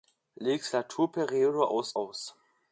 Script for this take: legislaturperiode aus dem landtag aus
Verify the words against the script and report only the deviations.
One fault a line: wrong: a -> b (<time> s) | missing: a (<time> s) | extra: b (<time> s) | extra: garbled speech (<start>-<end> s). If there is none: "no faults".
missing: dem landtag (1.9 s)